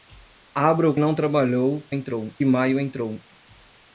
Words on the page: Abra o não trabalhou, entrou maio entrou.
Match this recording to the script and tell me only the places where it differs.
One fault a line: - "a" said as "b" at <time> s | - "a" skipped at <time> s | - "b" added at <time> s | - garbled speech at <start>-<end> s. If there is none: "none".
none